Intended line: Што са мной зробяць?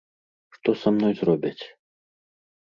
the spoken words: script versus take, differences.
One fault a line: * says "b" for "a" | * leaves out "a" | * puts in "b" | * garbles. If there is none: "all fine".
all fine